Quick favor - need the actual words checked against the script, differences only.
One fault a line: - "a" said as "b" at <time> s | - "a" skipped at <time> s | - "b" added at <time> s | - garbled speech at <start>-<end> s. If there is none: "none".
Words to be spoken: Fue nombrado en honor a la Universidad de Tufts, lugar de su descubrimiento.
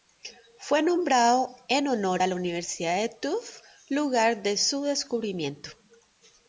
none